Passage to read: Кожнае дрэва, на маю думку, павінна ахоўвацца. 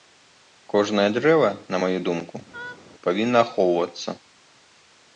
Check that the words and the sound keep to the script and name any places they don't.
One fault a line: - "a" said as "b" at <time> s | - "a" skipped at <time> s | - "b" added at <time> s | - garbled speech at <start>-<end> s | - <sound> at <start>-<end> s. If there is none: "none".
- laugh at 2.5-2.8 s